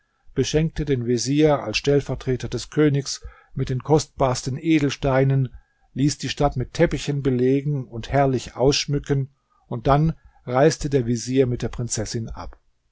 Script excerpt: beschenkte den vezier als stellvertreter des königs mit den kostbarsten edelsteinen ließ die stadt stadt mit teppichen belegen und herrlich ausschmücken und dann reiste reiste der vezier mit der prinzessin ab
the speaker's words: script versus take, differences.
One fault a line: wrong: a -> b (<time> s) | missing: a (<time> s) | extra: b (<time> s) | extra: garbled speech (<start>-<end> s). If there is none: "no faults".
missing: stadt (6.6 s)
missing: reiste (10.9 s)